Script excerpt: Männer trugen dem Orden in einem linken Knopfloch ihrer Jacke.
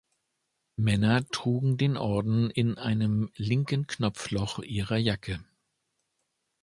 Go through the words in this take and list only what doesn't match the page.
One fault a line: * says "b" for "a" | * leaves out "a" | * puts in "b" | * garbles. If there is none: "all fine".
* says "den" for "dem"